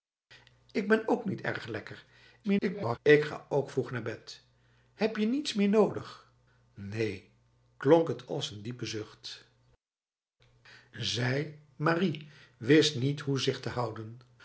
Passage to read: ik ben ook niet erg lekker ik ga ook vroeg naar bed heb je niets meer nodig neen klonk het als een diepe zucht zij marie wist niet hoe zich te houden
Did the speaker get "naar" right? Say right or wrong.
right